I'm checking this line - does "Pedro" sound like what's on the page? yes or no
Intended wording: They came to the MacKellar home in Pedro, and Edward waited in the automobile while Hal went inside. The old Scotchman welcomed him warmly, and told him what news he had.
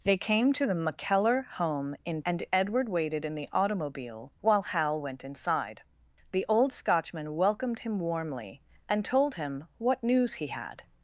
no